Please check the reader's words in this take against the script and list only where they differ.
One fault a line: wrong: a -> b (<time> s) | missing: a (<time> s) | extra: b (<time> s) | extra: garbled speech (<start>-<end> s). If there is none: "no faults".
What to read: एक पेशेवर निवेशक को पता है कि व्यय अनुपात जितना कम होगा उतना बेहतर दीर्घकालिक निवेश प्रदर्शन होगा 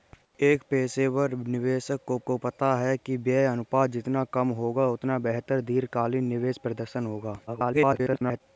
extra: को (2.3 s)
extra: garbled speech (7.5-8.4 s)